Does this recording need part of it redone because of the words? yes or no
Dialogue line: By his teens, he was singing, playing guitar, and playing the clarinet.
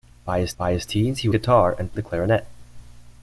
yes